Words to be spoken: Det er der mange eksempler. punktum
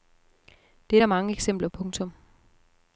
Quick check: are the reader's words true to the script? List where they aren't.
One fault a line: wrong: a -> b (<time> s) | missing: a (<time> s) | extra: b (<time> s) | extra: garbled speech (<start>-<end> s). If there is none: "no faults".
no faults